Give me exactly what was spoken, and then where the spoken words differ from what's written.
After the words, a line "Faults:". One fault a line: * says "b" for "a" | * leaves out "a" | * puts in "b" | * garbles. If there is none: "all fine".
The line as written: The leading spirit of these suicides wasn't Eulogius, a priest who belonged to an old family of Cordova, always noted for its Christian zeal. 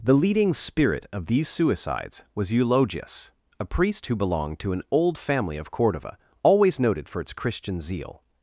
The leading spirit of these suicides was Eulogius, a priest who belonged to an old family of Cordova, always noted for its Christian zeal.
Faults:
* says "was" for "wasn't"